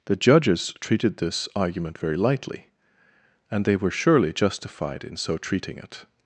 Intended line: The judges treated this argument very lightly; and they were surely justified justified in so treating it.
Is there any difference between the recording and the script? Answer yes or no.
yes